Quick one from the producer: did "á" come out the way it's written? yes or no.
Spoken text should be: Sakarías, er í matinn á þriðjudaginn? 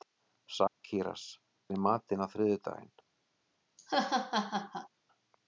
yes